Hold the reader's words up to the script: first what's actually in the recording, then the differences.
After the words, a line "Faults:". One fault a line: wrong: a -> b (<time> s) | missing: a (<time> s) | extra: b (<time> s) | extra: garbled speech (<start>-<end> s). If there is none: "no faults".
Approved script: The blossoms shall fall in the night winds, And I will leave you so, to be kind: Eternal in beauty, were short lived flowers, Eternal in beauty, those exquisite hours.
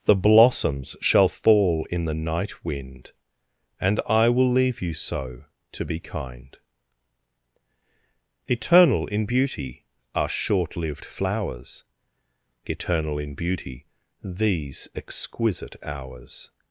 The blossoms shall fall in the night wind, And I will leave you so, to be kind: Eternal in beauty, are short lived flowers, Eternal in beauty, these exquisite hours.
Faults:
wrong: winds -> wind (2.6 s)
wrong: were -> are (10.2 s)
wrong: those -> these (14.2 s)